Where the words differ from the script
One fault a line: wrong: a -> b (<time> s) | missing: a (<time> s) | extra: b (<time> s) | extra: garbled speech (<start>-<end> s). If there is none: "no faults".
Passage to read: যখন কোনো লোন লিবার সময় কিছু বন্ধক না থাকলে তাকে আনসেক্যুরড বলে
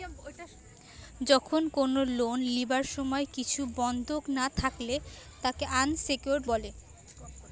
no faults